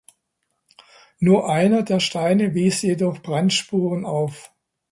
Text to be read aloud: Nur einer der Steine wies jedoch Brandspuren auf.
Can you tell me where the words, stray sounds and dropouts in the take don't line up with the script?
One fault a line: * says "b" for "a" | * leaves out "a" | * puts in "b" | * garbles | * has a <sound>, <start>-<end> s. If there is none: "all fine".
all fine